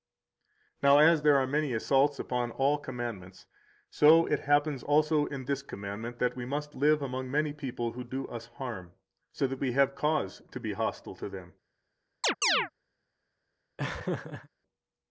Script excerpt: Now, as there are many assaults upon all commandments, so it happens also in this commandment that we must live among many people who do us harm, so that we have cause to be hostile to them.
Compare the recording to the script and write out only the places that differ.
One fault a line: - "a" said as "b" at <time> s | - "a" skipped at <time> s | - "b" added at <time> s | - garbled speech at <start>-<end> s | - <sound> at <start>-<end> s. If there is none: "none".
- chirp at 12.2-12.7 s
- laugh at 13.8-14.5 s